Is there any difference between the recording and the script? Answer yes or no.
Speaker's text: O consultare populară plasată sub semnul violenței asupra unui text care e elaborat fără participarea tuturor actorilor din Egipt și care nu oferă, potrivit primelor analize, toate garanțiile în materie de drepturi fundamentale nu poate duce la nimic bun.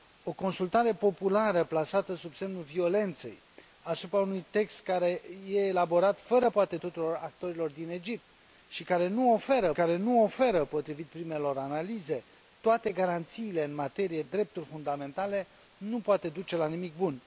yes